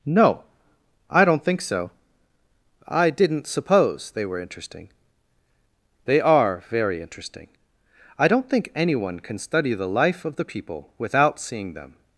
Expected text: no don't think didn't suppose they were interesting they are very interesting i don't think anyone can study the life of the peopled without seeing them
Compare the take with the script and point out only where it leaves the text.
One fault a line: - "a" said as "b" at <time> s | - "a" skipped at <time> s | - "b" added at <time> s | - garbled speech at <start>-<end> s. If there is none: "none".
- "i" added at 1.1 s
- "so i" added at 1.6 s
- "peopled" said as "people" at 10.4 s